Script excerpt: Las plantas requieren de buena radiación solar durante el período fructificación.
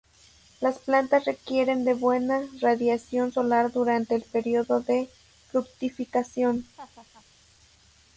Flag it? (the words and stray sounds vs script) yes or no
yes